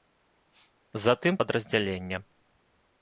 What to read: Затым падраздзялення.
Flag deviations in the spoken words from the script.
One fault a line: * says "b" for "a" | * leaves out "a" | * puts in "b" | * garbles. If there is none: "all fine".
all fine